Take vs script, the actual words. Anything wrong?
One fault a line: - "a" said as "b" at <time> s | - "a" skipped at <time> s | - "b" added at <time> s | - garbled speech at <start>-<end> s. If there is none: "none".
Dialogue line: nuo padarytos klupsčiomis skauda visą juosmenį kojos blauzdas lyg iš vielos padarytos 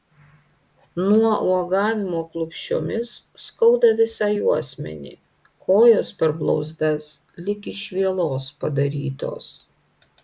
- "padarytos" said as "uogavimo" at 1.5 s
- "per" added at 6.2 s